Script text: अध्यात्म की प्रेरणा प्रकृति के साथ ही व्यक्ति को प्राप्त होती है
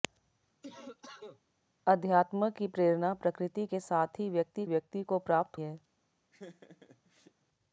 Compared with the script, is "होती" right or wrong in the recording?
wrong